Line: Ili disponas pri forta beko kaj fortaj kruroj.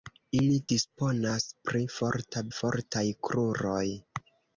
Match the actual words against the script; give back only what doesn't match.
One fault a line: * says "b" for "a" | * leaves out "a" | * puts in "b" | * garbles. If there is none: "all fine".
* leaves out "beko kaj"